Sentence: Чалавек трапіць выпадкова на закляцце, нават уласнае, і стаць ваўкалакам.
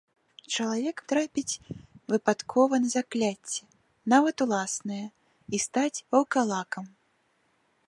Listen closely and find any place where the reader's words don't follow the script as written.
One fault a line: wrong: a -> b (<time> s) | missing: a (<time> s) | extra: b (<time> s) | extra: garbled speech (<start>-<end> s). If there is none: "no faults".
no faults